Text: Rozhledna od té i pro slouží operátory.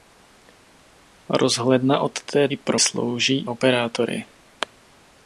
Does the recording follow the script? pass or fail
pass